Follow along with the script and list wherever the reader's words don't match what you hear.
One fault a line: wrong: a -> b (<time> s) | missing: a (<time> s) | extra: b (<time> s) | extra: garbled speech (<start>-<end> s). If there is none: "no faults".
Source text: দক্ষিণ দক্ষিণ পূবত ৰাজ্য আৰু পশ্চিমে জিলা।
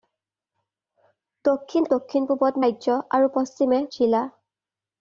no faults